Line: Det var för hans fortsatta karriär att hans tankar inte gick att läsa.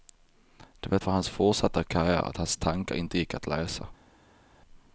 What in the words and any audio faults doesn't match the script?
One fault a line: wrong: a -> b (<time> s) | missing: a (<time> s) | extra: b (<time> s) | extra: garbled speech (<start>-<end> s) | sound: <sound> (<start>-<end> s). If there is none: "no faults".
no faults